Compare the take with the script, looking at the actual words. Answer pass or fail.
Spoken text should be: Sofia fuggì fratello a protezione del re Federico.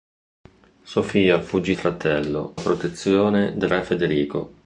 pass